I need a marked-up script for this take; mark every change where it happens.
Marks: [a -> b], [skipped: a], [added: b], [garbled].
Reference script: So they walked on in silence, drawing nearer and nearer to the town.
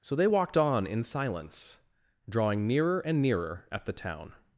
So they walked on in silence, drawing nearer and nearer [to -> at] the town.